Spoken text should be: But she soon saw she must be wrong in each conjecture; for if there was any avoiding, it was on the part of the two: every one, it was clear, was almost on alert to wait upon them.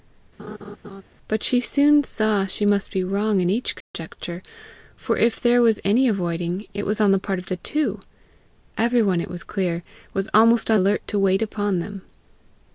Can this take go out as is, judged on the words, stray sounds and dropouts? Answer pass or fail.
fail